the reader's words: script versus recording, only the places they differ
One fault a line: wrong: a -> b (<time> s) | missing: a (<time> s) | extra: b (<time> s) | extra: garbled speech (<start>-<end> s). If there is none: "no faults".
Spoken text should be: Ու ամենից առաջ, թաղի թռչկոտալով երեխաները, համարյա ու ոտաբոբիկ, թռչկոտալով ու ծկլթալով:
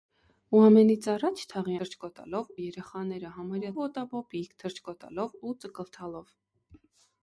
no faults